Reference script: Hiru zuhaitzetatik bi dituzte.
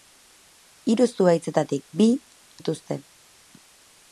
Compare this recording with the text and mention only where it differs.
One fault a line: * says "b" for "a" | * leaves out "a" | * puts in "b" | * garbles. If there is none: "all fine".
all fine